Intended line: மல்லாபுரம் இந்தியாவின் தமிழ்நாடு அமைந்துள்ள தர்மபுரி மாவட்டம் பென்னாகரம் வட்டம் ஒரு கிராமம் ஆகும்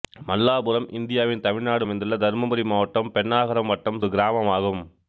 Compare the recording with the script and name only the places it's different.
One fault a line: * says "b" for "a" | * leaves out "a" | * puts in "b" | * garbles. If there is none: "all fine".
all fine